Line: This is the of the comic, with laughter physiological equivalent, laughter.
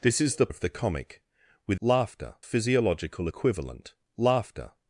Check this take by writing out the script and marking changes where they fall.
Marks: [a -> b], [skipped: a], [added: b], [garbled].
This is the of the comic, with laughter physiological equivalent, laughter.